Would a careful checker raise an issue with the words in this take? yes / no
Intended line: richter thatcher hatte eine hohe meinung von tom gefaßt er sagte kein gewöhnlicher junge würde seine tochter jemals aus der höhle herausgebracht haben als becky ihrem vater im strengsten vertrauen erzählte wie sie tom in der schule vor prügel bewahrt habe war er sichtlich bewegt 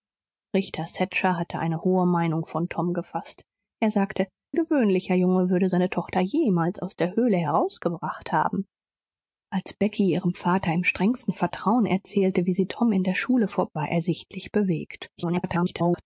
yes